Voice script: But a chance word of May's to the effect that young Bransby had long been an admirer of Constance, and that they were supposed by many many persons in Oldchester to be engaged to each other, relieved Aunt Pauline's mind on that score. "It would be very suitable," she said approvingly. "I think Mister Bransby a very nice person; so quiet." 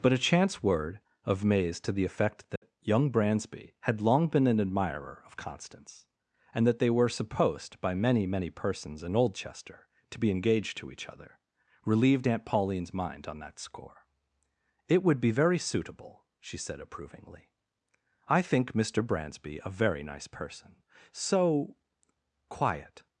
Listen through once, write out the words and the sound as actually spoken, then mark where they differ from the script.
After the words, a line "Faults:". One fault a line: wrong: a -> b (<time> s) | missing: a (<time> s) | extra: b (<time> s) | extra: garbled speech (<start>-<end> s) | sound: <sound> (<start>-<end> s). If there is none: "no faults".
But a chance word of May's to the effect that young Bransby had long been an admirer of Constance, and that they were supposed by many many persons in Oldchester to be engaged to each other, relieved Aunt Pauline's mind on that score. "It would be very suitable," she said approvingly. "I think Mister Bransby a very nice person; so quiet."
Faults:
sound: dropout (2.6-2.6 s)